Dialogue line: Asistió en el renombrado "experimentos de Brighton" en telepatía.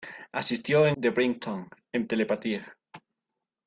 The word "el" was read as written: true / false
false